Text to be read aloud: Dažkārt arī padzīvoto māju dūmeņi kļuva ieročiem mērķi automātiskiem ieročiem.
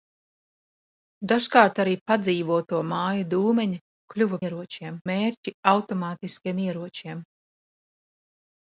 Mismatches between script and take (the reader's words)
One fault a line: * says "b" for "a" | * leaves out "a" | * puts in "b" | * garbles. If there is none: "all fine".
all fine